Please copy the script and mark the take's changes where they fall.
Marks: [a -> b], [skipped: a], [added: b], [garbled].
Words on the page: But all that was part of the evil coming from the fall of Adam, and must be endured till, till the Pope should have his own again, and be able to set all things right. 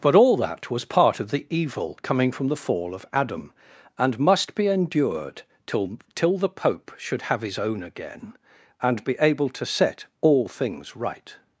But all that was part of the evil coming from the fall of Adam, and must be endured till, till the Pope should have his own again, and be able to set all things right.